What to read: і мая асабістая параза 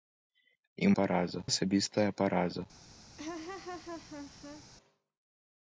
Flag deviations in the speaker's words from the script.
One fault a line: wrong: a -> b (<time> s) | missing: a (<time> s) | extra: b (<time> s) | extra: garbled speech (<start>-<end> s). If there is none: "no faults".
wrong: мая -> параза (1.0 s)